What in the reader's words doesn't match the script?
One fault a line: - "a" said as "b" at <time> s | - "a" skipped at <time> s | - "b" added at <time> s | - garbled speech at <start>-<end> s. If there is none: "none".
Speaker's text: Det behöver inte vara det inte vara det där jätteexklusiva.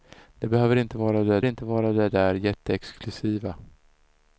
none